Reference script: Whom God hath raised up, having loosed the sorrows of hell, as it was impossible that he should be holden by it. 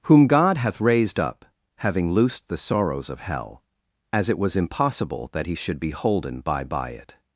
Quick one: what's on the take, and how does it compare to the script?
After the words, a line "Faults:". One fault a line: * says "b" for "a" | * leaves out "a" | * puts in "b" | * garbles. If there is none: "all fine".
Whom God hath raised up, having loosed the sorrows of hell, as it was impossible that he should be holden by by it.
Faults:
* puts in "by"